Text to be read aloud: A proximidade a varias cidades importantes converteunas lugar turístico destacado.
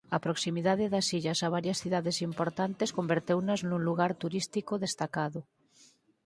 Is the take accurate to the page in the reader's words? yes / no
no